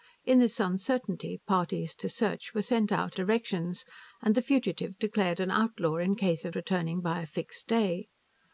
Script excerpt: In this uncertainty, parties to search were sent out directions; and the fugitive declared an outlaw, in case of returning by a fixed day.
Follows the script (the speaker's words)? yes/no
yes